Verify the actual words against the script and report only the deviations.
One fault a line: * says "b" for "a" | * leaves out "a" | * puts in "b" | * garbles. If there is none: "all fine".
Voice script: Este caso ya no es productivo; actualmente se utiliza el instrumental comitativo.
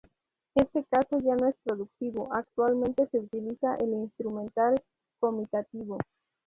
all fine